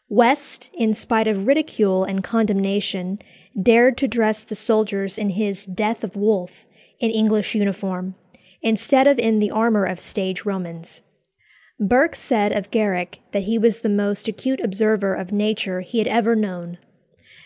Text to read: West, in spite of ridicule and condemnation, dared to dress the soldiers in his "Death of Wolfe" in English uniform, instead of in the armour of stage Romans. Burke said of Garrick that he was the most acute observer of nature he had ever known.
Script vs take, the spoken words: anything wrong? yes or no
no